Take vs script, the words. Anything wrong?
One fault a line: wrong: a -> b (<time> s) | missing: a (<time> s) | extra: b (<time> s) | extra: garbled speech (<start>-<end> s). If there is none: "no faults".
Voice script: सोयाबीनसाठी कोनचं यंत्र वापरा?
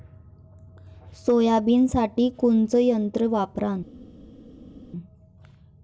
no faults